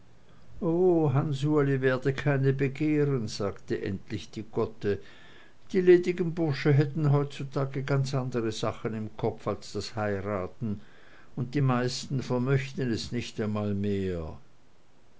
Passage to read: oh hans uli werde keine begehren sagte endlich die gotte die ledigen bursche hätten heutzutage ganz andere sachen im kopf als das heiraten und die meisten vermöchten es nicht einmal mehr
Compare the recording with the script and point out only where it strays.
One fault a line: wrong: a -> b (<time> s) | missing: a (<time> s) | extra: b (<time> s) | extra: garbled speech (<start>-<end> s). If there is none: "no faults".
no faults